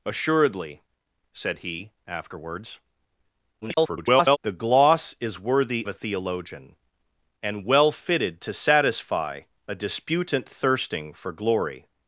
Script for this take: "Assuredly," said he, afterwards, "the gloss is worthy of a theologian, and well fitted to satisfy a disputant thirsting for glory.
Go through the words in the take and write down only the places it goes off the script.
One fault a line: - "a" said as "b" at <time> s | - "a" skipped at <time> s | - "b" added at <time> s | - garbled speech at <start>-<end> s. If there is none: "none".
- garbled speech at 3.6-4.4 s
- "of" skipped at 5.9 s